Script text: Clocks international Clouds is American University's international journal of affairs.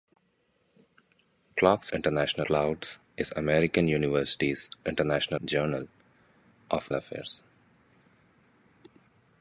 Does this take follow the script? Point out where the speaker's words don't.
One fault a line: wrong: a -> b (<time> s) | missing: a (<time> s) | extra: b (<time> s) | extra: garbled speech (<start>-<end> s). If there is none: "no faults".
no faults